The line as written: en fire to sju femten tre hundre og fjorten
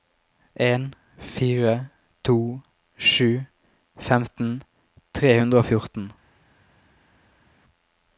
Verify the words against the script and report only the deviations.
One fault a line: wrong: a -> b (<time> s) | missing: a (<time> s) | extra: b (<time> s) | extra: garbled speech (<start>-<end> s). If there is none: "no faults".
no faults